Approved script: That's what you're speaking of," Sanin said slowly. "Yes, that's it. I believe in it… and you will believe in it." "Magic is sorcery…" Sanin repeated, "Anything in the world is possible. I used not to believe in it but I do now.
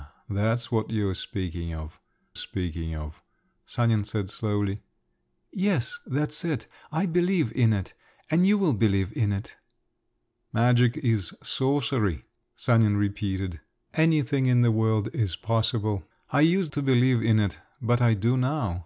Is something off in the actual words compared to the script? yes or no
yes